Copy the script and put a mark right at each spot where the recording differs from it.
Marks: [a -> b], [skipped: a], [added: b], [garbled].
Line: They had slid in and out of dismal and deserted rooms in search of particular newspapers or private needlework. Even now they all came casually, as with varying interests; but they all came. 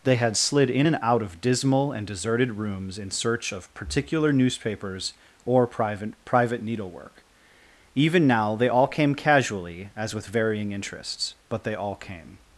They had slid in and out of dismal and deserted rooms in search of particular newspapers or private [added: private] needlework. Even now they all came casually, as with varying interests; but they all came.